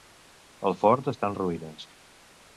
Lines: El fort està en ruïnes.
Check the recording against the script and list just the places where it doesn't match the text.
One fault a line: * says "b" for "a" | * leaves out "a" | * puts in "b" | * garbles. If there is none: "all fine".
all fine